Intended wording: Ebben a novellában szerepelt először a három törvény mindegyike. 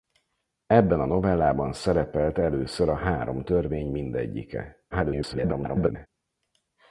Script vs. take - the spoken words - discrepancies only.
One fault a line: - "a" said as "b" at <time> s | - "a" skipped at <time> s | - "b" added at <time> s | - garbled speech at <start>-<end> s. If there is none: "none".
- garbled speech at 4.9-6.1 s